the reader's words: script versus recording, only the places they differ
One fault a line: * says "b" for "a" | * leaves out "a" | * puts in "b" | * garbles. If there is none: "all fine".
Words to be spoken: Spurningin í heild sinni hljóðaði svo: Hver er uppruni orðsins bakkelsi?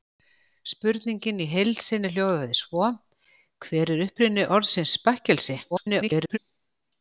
* garbles